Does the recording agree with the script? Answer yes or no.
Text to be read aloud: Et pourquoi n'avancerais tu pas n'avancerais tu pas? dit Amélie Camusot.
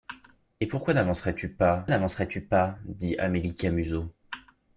yes